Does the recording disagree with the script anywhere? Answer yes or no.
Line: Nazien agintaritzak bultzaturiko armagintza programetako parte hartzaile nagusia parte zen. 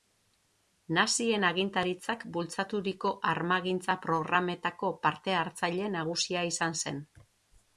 yes